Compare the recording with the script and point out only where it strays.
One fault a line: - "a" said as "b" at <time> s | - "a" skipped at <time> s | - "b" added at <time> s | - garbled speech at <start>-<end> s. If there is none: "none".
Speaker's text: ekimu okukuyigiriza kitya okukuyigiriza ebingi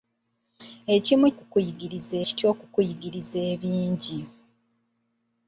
none